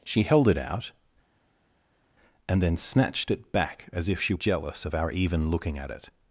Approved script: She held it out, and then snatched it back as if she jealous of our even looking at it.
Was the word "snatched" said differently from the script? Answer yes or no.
no